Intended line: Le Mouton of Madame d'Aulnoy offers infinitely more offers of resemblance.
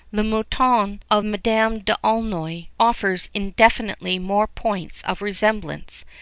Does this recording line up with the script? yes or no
no